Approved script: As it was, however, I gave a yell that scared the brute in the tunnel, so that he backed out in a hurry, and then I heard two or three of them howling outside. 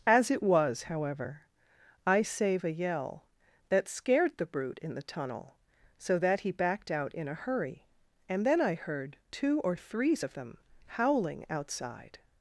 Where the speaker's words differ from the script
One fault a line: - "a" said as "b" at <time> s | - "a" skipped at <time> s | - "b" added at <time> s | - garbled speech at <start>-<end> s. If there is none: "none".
- "gave" said as "save" at 2.2 s
- "three" said as "threes" at 9.8 s